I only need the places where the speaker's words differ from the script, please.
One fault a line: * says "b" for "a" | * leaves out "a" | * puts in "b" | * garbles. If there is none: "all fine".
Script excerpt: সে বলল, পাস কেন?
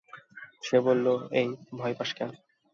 * puts in "এই ভয়"